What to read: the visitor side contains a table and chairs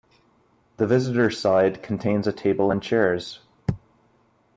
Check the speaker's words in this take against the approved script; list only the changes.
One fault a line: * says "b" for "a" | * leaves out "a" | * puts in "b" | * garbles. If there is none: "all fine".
all fine